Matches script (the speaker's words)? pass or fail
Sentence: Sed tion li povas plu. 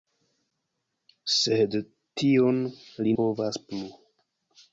pass